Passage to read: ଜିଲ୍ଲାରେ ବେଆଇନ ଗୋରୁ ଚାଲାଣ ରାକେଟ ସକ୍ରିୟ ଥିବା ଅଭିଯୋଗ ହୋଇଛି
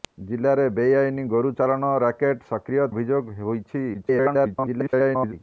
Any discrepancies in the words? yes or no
yes